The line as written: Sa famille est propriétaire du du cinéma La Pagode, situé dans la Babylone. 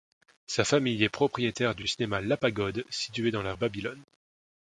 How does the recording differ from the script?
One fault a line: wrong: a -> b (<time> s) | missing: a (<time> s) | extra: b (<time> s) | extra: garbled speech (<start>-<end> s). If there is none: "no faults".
no faults